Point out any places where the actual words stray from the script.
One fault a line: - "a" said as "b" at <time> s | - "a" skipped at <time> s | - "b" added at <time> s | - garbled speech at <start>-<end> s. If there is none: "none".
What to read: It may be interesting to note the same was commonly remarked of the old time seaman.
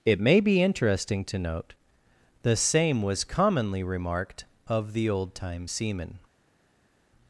none